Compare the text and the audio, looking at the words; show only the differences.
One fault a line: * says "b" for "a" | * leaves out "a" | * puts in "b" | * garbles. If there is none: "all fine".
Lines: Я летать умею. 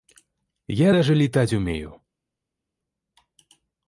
* puts in "даже"